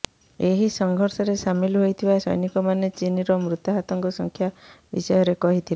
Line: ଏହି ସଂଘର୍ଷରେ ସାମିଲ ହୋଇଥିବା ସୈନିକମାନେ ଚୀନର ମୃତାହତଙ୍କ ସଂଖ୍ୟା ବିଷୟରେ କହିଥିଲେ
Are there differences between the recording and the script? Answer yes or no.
no